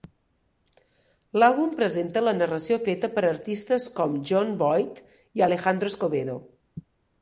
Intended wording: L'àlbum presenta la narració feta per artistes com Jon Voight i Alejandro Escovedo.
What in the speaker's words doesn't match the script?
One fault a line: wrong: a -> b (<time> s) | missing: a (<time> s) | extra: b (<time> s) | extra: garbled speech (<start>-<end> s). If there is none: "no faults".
no faults